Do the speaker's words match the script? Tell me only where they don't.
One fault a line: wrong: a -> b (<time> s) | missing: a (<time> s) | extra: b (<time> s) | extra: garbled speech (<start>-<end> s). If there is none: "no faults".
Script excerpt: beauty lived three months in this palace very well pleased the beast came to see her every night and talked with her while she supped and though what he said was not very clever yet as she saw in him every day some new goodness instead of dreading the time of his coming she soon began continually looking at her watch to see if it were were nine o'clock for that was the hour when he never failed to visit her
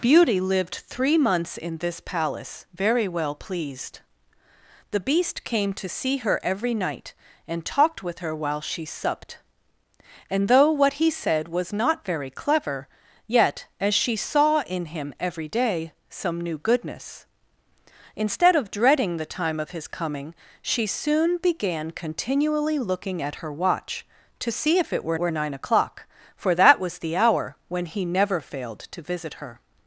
no faults